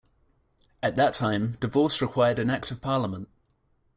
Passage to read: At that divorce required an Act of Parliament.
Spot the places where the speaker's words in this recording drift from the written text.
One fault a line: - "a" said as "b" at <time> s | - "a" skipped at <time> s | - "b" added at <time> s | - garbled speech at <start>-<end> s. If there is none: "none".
- "time" added at 1.1 s